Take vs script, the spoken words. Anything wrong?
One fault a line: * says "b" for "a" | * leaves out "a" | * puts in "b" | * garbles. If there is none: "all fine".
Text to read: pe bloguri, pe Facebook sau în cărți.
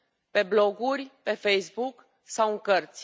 all fine